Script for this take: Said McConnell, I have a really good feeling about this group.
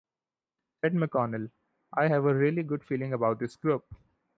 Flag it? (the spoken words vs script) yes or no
no